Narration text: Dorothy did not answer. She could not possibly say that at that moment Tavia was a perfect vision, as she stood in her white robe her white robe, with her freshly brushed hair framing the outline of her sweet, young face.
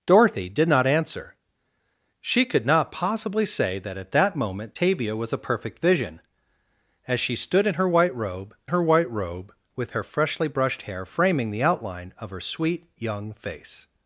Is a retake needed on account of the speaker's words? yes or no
no